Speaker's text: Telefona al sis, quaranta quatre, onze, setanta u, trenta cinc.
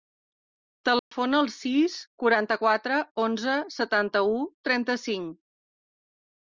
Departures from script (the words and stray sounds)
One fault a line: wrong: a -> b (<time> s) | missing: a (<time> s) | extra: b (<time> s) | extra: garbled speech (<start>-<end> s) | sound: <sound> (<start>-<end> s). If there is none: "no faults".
sound: dropout (1.0-1.1 s)